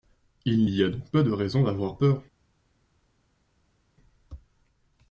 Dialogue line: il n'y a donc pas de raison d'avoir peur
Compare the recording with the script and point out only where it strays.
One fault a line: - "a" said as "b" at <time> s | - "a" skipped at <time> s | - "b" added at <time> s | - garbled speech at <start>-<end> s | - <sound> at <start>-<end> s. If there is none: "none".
none